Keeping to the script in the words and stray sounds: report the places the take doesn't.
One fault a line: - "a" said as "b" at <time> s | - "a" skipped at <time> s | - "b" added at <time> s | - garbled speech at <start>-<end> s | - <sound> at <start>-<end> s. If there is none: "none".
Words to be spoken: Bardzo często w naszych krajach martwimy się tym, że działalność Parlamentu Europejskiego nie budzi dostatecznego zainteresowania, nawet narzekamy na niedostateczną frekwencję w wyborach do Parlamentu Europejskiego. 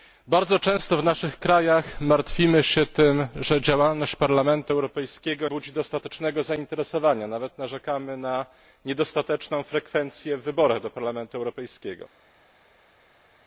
- "nie" skipped at 5.5 s